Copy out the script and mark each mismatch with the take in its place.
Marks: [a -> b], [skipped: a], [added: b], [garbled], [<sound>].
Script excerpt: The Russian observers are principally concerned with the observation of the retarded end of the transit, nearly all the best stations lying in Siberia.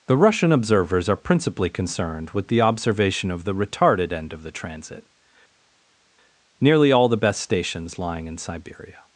The Russian observers are principally concerned with the observation of the retarded end of the transit, nearly all the best stations lying in Siberia.